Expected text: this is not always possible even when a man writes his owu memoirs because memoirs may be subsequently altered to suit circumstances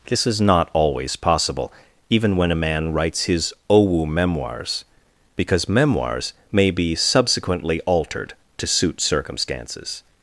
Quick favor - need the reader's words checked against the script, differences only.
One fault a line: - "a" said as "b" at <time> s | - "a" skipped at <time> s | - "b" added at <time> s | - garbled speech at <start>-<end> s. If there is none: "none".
none